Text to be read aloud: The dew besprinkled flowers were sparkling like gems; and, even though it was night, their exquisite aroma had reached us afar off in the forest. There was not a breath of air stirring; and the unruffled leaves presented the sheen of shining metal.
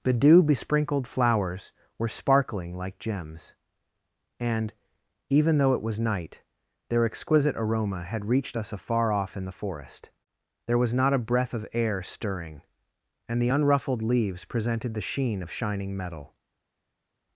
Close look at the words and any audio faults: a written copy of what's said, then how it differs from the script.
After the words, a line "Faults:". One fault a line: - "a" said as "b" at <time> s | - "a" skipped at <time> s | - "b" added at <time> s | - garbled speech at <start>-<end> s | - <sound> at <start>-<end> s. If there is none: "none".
The dew besprinkled flowers were sparkling like gems; and, even though it was night, their exquisite aroma had reached us afar off in the forest. There was not a breath of air stirring; and the unruffled leaves presented the sheen of shining metal.
Faults:
none